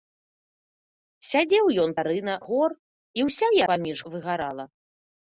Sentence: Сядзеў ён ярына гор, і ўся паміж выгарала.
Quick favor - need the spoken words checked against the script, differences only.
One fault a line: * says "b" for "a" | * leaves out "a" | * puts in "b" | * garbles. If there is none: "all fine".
all fine